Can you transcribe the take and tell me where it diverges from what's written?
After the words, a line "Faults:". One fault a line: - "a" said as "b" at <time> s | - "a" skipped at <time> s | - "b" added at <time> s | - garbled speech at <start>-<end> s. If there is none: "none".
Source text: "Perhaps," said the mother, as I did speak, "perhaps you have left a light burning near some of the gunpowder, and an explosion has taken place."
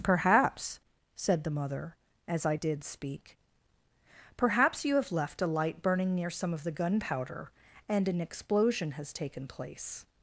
"Perhaps," said the mother, as I did speak, "perhaps you have left a light burning near some of the gunpowder, and an explosion has taken place."
Faults:
none